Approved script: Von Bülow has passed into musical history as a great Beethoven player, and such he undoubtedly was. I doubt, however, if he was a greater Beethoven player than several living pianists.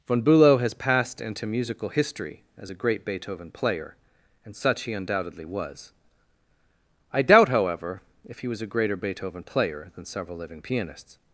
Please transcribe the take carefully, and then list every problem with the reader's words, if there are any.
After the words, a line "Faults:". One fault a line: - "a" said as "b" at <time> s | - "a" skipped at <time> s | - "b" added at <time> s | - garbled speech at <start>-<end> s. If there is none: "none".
Von Bülow has passed into musical history as a great Beethoven player, and such he undoubtedly was. I doubt, however, if he was a greater Beethoven player than several living pianists.
Faults:
none